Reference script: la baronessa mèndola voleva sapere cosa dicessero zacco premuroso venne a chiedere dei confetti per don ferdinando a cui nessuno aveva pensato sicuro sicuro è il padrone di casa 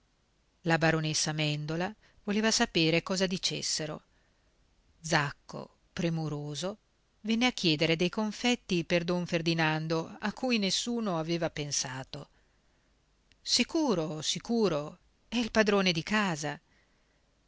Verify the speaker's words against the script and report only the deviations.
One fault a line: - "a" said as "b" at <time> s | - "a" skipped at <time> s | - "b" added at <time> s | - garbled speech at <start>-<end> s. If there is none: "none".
none